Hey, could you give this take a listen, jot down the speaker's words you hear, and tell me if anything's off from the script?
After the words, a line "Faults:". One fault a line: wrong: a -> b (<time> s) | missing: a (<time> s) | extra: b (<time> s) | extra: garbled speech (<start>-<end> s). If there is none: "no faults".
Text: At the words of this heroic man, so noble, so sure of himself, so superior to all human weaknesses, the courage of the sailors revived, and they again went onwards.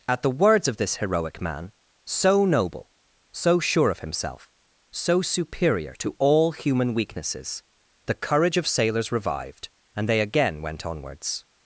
At the words of this heroic man, so noble, so sure of himself, so superior to all human weaknesses, the courage of sailors revived, and they again went onwards.
Faults:
missing: the (8.7 s)